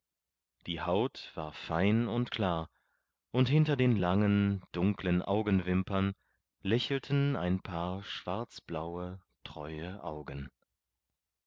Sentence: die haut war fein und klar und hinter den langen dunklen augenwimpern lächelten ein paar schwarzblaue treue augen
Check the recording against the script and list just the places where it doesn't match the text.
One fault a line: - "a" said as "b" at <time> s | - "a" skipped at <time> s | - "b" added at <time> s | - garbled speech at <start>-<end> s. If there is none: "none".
none